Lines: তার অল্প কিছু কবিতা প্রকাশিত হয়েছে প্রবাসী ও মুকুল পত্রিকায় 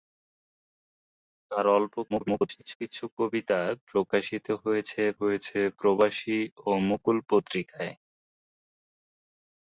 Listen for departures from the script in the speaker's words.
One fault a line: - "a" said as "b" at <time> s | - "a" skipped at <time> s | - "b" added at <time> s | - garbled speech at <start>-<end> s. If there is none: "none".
- garbled speech at 2.1-2.8 s
- "হয়েছে" added at 5.2 s